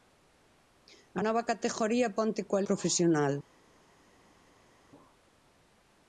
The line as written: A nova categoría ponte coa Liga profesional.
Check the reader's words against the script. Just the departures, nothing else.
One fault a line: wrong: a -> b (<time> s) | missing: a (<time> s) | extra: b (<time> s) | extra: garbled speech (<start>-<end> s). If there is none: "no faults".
missing: Liga (2.7 s)